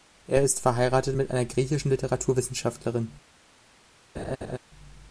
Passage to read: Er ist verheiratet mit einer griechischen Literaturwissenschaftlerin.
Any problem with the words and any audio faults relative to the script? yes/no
yes